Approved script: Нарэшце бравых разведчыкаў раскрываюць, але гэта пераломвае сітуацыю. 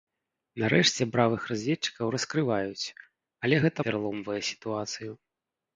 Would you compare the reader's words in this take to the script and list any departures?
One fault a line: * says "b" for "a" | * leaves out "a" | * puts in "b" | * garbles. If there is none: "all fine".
all fine